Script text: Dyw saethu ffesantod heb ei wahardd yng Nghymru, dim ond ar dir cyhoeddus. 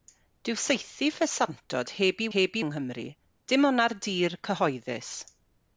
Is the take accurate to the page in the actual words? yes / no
no